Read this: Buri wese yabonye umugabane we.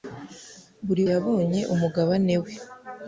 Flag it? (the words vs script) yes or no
yes